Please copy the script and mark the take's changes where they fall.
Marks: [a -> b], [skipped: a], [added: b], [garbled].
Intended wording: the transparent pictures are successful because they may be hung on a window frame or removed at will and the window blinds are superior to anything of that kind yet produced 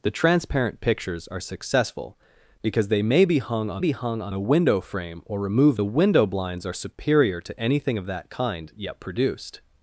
the transparent pictures are successful because they may be hung on [added: be hung on] a window frame or removed [skipped: at will and] the window blinds are superior to anything of that kind yet produced